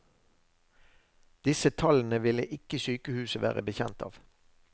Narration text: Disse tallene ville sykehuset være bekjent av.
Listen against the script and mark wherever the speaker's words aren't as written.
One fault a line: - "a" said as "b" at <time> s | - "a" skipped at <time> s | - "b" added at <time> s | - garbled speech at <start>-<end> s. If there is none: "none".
- "ikke" added at 2.5 s